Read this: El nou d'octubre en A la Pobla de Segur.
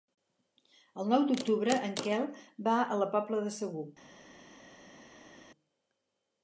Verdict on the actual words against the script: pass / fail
fail